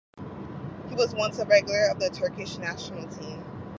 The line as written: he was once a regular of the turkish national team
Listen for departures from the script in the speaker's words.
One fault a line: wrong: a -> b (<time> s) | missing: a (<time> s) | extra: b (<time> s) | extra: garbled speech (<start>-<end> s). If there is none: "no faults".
no faults